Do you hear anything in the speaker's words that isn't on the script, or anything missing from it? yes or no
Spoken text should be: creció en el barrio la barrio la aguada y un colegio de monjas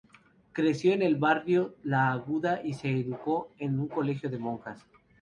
yes